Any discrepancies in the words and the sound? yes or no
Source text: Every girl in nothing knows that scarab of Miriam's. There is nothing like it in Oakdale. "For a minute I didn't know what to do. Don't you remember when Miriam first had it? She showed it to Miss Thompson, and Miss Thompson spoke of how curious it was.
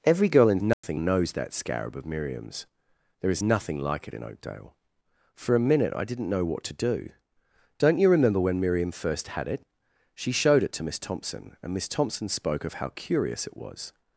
yes